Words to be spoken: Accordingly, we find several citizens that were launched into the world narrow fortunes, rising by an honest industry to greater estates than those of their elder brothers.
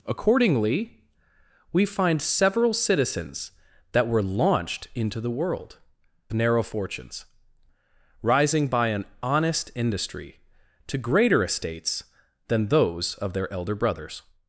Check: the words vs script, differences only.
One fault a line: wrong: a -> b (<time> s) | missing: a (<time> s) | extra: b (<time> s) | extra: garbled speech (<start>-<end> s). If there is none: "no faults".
no faults